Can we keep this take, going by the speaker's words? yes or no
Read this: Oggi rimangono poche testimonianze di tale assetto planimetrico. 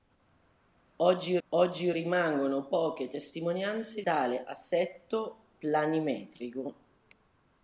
no